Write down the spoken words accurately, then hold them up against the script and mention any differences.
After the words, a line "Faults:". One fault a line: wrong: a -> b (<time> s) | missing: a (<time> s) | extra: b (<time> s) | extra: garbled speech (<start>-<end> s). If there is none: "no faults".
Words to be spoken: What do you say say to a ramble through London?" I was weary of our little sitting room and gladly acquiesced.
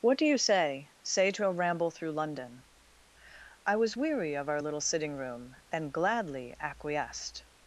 What do you say say to a ramble through London?" I was weary of our little sitting room and gladly acquiesced.
Faults:
no faults